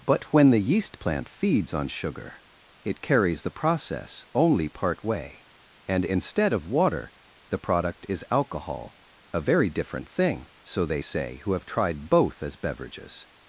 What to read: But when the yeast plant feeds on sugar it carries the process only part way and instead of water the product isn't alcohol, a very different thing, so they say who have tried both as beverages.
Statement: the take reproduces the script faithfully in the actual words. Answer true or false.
false